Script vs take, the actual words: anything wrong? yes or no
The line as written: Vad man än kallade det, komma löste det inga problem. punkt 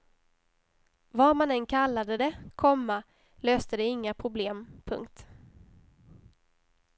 no